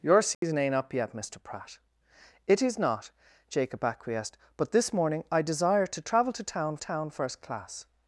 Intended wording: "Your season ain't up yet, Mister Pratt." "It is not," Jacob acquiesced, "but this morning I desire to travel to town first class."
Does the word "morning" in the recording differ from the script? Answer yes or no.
no